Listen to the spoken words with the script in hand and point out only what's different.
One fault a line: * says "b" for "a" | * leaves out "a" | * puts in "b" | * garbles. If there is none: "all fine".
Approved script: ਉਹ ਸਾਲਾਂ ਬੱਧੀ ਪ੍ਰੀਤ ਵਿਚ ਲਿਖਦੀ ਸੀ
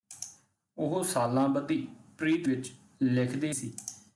all fine